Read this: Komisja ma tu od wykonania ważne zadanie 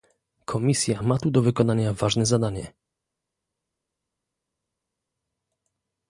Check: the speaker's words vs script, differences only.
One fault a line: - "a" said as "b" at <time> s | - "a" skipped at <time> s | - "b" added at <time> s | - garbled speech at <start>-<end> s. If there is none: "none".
- "od" said as "do" at 1.3 s